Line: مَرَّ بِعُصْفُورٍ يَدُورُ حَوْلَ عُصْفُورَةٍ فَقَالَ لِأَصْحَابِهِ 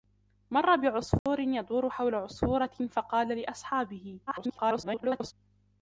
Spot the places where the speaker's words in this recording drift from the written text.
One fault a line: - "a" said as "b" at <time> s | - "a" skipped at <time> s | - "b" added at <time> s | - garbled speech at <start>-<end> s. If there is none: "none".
- garbled speech at 4.3-5.3 s